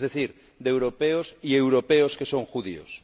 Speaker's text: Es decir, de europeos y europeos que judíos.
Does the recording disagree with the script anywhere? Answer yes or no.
yes